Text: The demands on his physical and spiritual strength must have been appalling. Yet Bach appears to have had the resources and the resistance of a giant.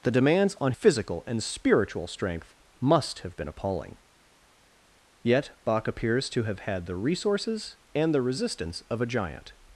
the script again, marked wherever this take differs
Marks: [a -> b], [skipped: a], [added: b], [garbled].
The demands on [skipped: his] physical and spiritual strength must have been appalling. Yet Bach appears to have had the resources and the resistance of a giant.